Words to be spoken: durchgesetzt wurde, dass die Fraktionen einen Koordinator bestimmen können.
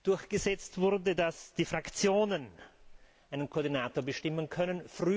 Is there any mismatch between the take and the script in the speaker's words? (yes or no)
no